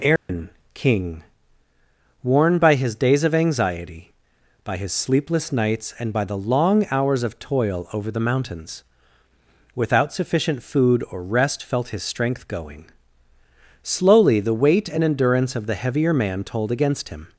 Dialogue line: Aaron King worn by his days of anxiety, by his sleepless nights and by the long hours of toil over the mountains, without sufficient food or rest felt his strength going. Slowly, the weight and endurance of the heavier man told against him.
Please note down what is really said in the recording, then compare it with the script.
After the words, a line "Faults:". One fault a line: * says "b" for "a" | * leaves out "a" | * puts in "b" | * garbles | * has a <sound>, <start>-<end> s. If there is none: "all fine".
Aaron King worn by his days of anxiety, by his sleepless nights and by the long hours of toil over the mountains, without sufficient food or rest felt his strength going. Slowly, the weight and endurance of the heavier man told against him.
Faults:
* has a dropout, 0.2-0.3 s